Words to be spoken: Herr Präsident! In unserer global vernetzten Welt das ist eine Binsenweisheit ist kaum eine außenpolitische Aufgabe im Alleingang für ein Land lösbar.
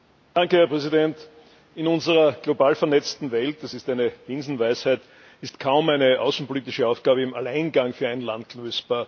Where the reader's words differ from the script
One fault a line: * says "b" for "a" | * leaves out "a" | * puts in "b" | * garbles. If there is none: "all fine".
all fine